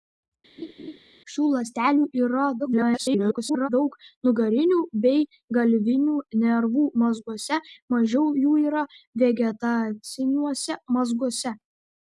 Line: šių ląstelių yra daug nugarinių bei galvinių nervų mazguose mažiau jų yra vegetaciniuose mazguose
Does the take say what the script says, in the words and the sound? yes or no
no